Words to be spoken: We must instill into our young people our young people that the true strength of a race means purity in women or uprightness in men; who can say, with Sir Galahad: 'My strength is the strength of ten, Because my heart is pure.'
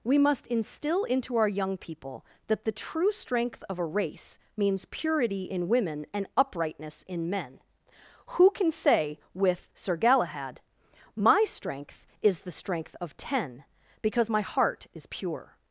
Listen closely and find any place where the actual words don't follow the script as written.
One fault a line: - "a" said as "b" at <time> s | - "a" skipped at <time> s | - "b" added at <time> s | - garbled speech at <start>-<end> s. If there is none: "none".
- "our young people" skipped at 2.2 s
- "or" said as "and" at 6.1 s